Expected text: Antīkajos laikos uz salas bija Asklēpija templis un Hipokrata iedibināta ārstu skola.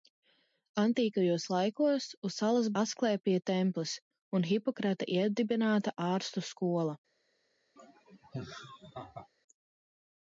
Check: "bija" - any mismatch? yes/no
yes